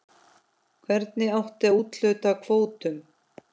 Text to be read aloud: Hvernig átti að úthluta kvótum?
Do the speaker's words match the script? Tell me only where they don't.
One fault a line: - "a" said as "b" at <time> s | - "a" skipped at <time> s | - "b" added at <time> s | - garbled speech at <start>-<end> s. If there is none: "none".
none